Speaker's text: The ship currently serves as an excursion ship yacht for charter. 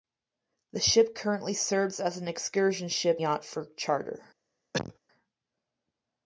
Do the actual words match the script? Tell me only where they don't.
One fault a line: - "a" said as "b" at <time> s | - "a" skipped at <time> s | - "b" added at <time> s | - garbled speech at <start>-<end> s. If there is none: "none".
none